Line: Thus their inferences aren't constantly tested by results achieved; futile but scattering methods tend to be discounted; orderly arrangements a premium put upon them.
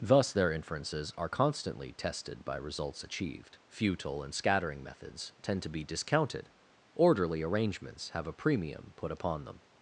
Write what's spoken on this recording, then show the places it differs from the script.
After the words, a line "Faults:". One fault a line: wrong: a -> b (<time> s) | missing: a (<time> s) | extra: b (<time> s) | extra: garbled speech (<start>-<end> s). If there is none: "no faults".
Thus their inferences are constantly tested by results achieved; futile and scattering methods tend to be discounted; orderly arrangements have a premium put upon them.
Faults:
wrong: aren't -> are (1.1 s)
wrong: but -> and (4.2 s)
extra: have (8.1 s)